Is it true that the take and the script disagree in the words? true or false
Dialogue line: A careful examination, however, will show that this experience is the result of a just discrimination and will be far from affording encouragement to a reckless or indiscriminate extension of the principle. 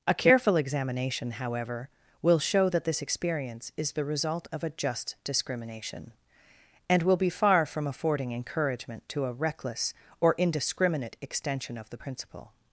false